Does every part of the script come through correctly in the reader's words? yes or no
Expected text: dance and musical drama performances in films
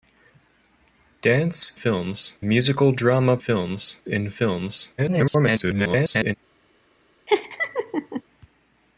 no